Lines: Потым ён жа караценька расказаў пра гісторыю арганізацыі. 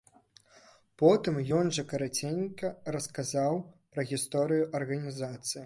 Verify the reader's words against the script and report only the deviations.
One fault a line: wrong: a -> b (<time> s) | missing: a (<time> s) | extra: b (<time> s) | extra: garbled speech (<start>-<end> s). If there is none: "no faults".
no faults